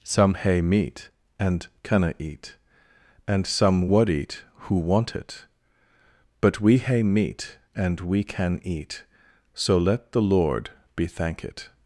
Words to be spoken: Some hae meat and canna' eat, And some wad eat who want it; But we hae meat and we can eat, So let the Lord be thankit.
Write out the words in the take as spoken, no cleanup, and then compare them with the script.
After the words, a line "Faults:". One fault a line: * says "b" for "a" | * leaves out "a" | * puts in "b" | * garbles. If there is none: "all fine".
Some hae meat and canna' eat, And some wad eat who want it; But we hae meat and we can eat, So let the Lord be thankit.
Faults:
all fine